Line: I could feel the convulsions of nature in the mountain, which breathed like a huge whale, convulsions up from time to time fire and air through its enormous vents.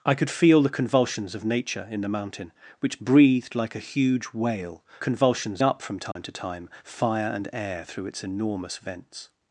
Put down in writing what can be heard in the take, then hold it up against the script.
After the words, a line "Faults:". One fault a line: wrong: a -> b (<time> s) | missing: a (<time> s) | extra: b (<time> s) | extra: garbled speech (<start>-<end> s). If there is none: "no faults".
I could feel the convulsions of nature in the mountain, which breathed like a huge whale, convulsions up from time to time fire and air through its enormous vents.
Faults:
no faults